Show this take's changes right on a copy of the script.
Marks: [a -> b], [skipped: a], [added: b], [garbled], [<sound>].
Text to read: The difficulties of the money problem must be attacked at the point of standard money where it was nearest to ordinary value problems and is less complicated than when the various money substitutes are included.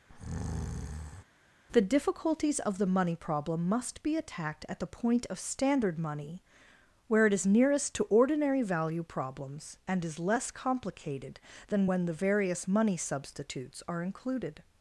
[breath] The difficulties of the money problem must be attacked at the point of standard money where it [was -> is] nearest to ordinary value problems and is less complicated than when the various money substitutes are included.